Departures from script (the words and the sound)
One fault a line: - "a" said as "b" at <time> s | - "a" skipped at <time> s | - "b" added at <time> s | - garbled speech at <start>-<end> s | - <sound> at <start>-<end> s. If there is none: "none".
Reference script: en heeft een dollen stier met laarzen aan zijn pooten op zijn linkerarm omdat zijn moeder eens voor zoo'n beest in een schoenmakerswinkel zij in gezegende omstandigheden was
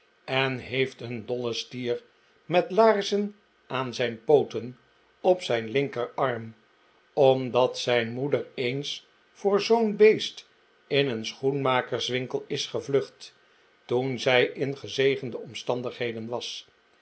- "is gevlucht toen" added at 12.5 s